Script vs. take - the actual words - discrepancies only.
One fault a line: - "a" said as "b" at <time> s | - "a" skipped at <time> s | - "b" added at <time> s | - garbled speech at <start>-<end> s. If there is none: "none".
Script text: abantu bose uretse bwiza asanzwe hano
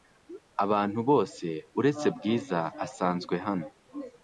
none